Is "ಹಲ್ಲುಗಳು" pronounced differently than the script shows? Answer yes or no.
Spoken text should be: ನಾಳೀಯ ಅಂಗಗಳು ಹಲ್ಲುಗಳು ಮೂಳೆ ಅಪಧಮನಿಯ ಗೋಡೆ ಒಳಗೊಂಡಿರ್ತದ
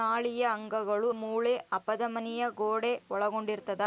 yes